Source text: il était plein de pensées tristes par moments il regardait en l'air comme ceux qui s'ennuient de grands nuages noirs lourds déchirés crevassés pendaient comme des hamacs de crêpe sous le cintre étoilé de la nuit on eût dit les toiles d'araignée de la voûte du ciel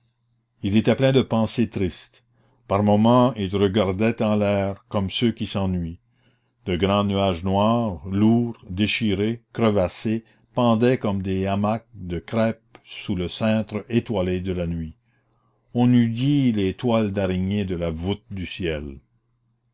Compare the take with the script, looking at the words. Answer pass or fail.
pass